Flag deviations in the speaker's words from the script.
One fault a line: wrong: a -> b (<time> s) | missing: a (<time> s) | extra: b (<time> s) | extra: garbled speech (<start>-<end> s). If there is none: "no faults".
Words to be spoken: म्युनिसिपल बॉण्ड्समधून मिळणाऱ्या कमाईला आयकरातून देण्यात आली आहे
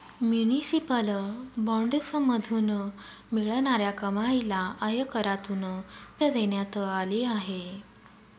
no faults